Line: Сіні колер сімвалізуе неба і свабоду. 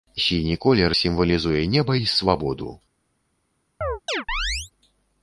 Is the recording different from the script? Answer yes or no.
no